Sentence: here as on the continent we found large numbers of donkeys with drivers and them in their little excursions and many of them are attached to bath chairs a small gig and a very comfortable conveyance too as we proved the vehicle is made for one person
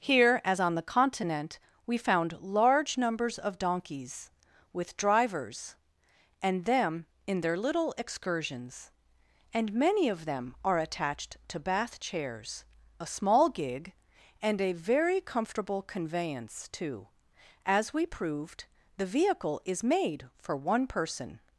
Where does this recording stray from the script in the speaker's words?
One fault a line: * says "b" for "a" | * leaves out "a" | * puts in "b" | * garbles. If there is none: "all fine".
all fine